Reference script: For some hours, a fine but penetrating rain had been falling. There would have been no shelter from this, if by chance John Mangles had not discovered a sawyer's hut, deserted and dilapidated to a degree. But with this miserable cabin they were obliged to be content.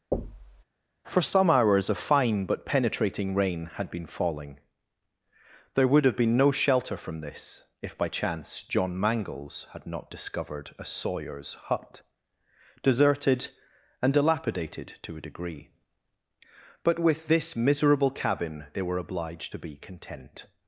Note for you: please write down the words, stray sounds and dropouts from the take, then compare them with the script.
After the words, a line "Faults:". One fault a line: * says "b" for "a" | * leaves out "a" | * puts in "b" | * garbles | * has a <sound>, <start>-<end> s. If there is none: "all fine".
For some hours, a fine but penetrating rain had been falling. There would have been no shelter from this, if by chance John Mangles had not discovered a sawyer's hut, deserted and dilapidated to a degree. But with this miserable cabin they were obliged to be content.
Faults:
* has a thud, 0.1-0.6 s